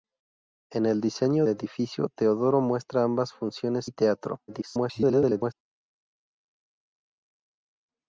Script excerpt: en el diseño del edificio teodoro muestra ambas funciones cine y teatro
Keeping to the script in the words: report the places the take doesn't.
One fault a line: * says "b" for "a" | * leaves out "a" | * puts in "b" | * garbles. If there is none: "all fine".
* leaves out "del"
* leaves out "cine"
* garbles